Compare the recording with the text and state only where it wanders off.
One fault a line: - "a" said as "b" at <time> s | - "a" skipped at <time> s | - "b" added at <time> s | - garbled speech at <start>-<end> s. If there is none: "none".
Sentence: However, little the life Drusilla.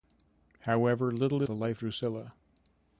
none